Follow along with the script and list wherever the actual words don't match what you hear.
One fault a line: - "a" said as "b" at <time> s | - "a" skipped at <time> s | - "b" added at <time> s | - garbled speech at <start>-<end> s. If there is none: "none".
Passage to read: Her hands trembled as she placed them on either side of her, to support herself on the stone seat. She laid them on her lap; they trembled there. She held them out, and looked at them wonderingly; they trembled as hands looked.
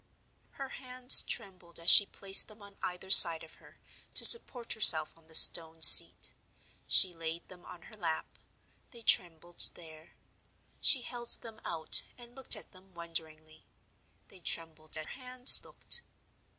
none